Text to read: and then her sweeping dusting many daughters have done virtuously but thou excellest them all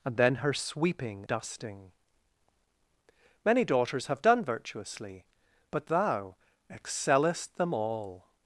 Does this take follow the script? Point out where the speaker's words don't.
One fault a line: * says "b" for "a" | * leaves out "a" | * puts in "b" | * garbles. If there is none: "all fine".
all fine